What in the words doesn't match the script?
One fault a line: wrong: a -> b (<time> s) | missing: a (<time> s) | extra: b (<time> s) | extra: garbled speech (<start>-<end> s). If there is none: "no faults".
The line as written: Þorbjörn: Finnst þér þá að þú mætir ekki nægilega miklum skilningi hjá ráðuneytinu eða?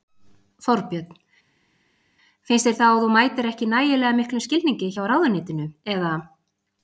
no faults